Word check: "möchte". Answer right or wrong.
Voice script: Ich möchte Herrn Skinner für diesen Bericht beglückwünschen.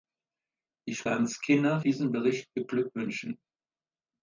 wrong